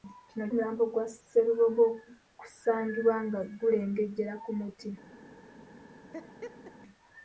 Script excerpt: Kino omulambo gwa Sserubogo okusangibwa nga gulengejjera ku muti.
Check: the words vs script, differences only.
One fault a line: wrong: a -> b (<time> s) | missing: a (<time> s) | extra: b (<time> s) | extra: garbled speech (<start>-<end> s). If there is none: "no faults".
no faults